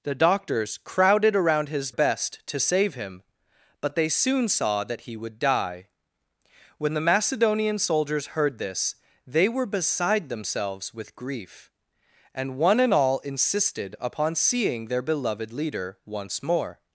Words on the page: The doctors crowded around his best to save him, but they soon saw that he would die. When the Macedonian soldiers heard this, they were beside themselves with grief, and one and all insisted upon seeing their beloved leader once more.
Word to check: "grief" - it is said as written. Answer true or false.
true